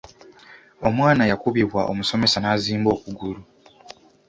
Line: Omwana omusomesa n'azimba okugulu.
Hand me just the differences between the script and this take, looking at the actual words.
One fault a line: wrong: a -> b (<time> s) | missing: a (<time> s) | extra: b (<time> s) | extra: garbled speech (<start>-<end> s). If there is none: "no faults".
extra: yakubibwa (1.3 s)